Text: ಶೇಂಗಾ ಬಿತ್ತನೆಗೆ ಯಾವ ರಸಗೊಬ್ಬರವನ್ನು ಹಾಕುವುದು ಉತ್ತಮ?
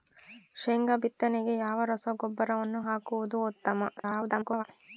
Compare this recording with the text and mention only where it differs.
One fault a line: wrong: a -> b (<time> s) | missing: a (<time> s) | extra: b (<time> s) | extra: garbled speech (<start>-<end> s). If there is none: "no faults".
extra: garbled speech (4.0-4.6 s)